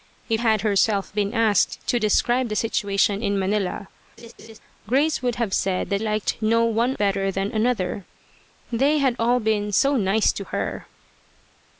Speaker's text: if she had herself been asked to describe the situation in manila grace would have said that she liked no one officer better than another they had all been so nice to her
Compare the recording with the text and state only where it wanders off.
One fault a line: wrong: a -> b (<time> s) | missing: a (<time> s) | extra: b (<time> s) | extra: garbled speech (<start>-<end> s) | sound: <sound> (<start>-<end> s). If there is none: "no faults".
missing: she (0.4 s)
sound: laugh (4.2-4.6 s)
missing: she (6.0 s)
missing: officer (7.0 s)